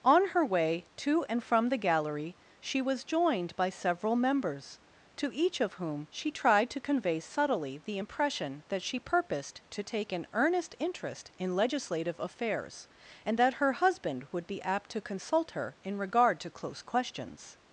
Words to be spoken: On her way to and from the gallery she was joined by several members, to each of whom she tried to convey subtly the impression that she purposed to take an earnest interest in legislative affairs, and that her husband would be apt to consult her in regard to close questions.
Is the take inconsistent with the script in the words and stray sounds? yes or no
no